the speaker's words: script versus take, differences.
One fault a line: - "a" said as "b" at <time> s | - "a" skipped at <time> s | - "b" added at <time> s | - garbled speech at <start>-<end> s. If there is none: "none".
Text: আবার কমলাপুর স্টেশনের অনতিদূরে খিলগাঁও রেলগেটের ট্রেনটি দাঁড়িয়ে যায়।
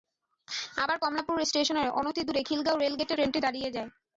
none